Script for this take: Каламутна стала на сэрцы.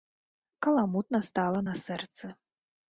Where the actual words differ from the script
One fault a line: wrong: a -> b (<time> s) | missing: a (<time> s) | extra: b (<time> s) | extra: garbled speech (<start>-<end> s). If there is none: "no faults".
no faults